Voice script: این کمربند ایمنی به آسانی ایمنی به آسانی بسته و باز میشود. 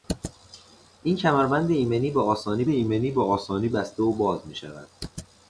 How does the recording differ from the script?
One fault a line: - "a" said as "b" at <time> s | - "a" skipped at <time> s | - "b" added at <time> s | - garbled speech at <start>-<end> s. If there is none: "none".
none